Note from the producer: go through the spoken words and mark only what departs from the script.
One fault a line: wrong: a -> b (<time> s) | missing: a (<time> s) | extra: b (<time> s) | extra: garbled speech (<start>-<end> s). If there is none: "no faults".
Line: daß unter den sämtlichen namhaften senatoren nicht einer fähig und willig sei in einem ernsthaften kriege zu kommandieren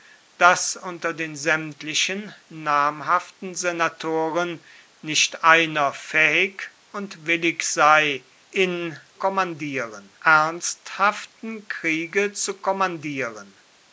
wrong: einem -> kommandieren (9.1 s)